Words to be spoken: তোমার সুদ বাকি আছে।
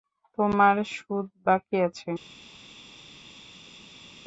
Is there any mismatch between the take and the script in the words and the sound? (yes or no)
no